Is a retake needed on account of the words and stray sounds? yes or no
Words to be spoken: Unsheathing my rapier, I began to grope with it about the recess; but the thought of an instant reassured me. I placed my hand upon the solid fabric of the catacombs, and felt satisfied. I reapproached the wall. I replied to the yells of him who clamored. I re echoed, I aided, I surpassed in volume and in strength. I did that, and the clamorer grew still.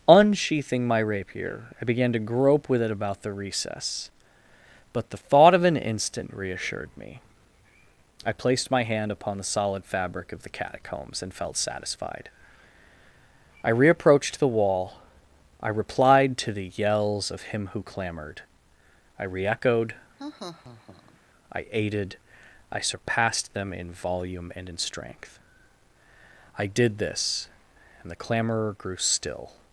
yes